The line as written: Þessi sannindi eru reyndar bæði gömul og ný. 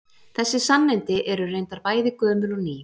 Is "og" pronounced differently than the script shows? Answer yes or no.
no